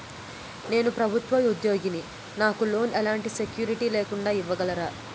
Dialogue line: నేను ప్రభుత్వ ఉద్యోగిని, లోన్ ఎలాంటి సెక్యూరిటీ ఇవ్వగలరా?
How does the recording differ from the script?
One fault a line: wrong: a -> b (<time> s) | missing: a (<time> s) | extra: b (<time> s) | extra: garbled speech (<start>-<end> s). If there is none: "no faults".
extra: నాకు (2.4 s)
extra: లేకుండా (3.9 s)